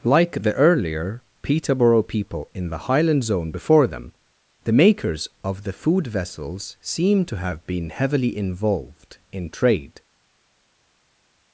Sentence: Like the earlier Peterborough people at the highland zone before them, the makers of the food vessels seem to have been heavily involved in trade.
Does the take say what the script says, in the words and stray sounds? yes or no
no